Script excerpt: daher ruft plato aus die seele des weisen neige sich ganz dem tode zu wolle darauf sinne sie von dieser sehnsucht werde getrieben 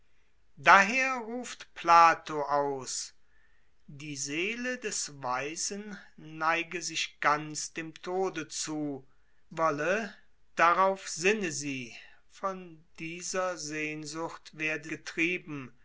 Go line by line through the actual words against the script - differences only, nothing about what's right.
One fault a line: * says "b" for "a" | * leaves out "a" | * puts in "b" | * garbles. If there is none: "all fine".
all fine